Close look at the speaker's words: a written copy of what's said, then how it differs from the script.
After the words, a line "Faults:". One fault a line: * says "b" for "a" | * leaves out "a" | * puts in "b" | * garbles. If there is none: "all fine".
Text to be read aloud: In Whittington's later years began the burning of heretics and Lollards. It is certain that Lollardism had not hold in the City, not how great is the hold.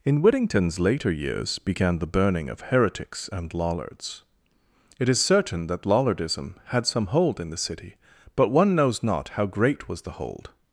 In Whittington's later years began the burning of heretics and Lollards. It is certain that Lollardism had some hold in the City, but one knows not how great was the hold.
Faults:
* says "some" for "not"
* puts in "but one knows"
* says "was" for "is"